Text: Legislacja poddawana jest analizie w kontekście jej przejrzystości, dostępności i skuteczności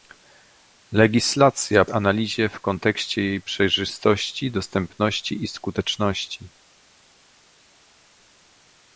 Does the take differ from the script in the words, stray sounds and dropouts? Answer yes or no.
yes